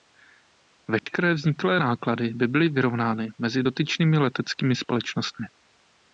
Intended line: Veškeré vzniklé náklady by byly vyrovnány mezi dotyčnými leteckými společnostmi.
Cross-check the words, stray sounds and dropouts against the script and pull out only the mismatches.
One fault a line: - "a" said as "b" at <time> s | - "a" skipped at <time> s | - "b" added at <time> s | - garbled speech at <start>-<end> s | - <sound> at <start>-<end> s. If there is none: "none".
- dropout at 1.0-1.1 s